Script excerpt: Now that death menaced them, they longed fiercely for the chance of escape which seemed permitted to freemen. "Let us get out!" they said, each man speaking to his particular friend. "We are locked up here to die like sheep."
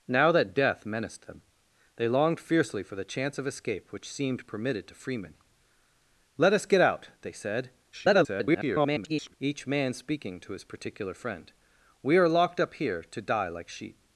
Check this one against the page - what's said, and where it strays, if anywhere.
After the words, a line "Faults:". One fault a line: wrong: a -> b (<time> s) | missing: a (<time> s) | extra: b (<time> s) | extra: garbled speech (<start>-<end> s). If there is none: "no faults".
Now that death menaced them, they longed fiercely for the chance of escape which seemed permitted to freemen. "Let us get out!" they said, [garbled] each man speaking to his particular friend. "We are locked up here to die like sheep."
Faults:
extra: garbled speech (7.9-9.3 s)